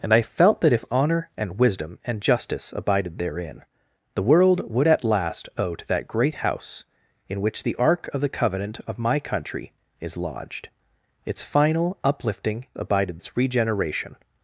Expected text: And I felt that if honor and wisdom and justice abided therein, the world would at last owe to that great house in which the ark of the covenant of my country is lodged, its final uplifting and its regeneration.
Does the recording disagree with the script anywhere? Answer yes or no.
yes